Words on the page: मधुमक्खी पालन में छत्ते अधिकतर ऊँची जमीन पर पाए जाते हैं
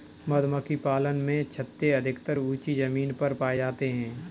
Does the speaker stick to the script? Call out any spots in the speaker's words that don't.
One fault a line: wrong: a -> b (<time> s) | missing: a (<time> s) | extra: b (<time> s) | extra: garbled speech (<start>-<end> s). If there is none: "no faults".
no faults